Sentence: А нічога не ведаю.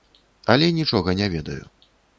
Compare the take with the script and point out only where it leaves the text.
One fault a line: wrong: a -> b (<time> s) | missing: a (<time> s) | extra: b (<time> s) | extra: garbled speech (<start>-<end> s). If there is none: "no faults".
wrong: А -> Але (0.5 s)